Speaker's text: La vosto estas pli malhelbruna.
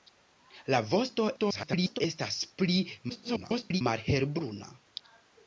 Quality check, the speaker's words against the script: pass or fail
fail